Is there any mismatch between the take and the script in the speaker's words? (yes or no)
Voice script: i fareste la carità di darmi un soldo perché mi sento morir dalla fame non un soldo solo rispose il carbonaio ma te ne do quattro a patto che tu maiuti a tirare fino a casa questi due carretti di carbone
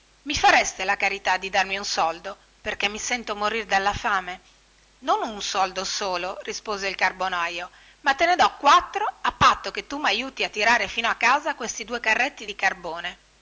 no